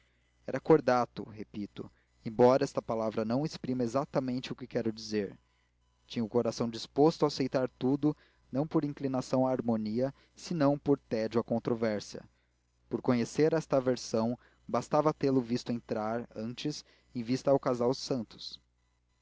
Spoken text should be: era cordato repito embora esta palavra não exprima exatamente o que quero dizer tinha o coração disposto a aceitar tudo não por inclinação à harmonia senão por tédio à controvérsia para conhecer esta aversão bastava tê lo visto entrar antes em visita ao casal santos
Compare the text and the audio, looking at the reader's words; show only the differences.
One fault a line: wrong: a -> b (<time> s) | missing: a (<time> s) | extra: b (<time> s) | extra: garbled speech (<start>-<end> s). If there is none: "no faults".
no faults